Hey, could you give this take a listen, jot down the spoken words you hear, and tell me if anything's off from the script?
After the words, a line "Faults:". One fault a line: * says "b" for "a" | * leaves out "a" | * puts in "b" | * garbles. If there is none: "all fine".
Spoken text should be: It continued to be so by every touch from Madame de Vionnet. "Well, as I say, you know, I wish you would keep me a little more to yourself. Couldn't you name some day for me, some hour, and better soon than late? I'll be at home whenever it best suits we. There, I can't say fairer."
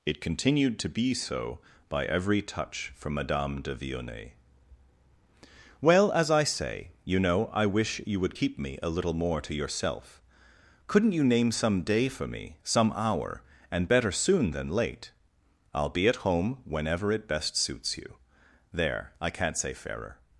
It continued to be so by every touch from Madame de Vionnet. "Well, as I say, you know, I wish you would keep me a little more to yourself. Couldn't you name some day for me, some hour, and better soon than late? I'll be at home whenever it best suits you. There, I can't say fairer."
Faults:
* says "you" for "we"